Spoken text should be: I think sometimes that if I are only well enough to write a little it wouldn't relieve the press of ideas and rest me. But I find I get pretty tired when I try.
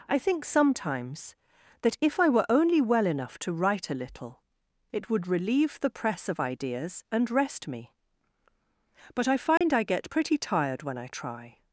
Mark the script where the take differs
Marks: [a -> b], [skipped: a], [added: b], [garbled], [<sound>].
I think sometimes that if I [are -> were] only well enough to write a little it [wouldn't -> would] relieve the press of ideas and rest me. But I find [dropout] I get pretty tired when I try.